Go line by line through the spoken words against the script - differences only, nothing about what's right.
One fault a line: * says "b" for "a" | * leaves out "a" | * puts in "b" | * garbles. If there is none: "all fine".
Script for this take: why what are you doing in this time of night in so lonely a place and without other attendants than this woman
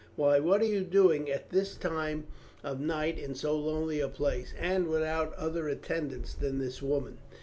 * says "at" for "in"